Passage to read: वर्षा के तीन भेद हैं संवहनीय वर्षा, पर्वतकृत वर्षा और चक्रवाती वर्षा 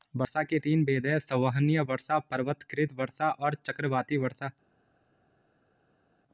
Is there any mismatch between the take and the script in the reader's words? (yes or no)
no